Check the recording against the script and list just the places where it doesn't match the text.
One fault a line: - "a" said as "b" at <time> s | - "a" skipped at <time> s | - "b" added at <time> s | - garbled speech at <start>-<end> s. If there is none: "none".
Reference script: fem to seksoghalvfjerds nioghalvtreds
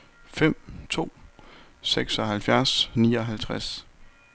none